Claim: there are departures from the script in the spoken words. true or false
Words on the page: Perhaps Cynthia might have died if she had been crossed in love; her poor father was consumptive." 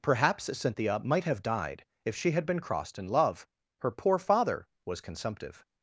false